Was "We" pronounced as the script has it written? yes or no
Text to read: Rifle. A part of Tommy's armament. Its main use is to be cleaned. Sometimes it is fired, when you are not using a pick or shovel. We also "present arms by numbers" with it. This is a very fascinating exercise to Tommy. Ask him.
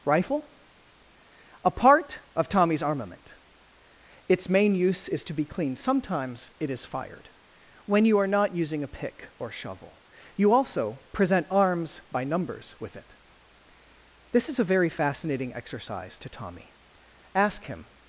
no